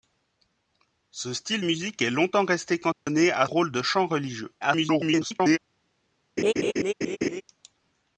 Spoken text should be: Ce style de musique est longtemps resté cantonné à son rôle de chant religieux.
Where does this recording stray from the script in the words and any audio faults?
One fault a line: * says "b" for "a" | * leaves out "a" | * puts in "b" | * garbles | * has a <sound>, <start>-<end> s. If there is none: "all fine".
* leaves out "de"
* has a dropout, 2.9-3.1 s
* leaves out "son"
* garbles
* has a laugh, 6.4-7.4 s